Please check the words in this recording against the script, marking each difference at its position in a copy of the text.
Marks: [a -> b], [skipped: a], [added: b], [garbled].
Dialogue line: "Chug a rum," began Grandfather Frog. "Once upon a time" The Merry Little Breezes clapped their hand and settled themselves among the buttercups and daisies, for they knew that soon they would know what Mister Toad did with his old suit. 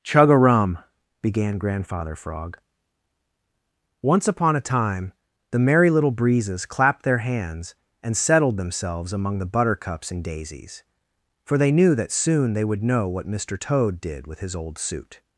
"Chug a rum," began Grandfather Frog. "Once upon a time" The Merry Little Breezes clapped their [hand -> hands] and settled themselves among the buttercups and daisies, for they knew that soon they would know what Mister Toad did with his old suit.